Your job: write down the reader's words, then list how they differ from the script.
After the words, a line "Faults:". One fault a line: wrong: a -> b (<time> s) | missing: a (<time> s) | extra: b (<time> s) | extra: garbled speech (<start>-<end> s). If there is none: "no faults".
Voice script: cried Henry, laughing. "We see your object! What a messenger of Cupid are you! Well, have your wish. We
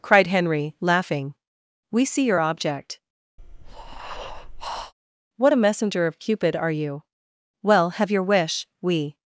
cried Henry, laughing. "We see your object! What a messenger of Cupid are you! Well, have your wish. We
Faults:
no faults